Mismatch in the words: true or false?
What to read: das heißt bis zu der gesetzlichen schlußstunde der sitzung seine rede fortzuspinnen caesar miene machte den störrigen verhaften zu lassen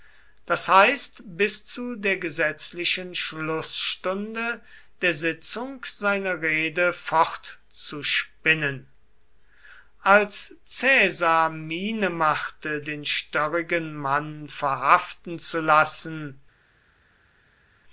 true